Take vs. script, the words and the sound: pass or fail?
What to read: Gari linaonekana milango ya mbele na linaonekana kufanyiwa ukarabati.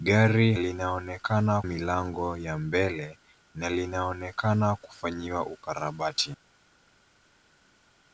pass